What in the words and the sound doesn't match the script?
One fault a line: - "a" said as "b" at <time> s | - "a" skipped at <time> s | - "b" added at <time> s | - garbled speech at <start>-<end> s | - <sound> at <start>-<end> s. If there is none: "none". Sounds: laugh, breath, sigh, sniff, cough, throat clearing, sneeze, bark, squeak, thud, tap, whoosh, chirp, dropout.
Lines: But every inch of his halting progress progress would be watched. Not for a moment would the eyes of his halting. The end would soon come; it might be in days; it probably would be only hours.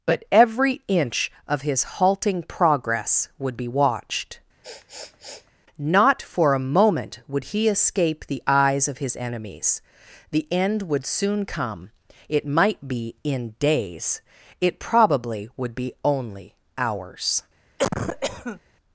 - "progress" skipped at 3.3 s
- sniff at 4.6-5.5 s
- "he escape" added at 7.4 s
- "halting" said as "enemies" at 9.2 s
- cough at 17.8-18.6 s